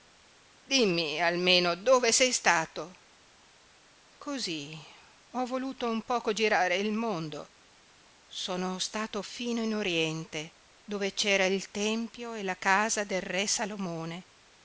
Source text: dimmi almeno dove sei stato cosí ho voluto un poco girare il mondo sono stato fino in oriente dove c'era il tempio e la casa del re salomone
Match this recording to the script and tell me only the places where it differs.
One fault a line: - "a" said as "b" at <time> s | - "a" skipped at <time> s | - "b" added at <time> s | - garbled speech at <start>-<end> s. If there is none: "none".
none